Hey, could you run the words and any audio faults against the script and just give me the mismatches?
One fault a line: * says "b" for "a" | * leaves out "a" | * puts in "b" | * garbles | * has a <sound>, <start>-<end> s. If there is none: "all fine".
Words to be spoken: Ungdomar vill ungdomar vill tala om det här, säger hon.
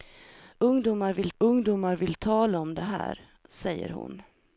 all fine